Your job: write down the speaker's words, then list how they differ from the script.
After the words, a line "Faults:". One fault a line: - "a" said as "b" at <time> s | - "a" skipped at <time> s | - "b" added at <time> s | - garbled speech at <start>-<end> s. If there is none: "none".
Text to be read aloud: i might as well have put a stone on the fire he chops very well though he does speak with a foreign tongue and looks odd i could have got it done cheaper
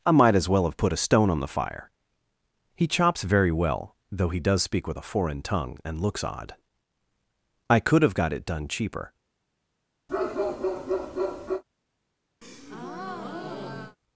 i might as well have put a stone on the fire he chops very well though he does speak with a foreign tongue and looks odd i could have got it done cheaper
Faults:
none